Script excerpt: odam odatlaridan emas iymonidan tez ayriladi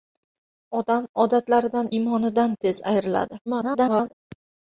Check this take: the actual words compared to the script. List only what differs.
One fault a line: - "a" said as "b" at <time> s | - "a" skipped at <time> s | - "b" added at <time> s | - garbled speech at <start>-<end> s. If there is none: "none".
- "emas" skipped at 1.9 s
- garbled speech at 3.5-4.1 s